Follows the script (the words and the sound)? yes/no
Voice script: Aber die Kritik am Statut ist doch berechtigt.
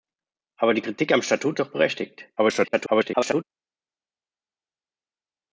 no